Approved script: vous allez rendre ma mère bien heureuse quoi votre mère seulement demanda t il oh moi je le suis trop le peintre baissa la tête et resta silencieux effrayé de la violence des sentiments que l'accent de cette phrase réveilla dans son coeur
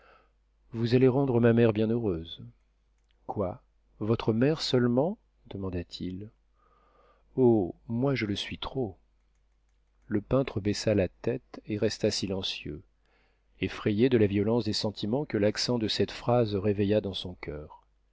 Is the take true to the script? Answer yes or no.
yes